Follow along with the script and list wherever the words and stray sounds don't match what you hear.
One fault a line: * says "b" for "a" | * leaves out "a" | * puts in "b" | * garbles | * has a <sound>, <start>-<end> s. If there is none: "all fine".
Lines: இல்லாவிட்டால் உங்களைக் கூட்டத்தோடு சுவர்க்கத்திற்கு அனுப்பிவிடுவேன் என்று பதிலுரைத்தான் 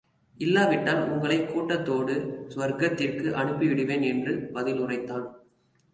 all fine